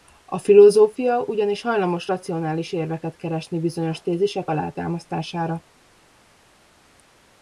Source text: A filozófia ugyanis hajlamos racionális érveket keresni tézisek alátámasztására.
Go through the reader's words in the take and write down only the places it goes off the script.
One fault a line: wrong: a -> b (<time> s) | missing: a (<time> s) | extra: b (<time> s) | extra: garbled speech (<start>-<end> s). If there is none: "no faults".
extra: bizonyos (3.6 s)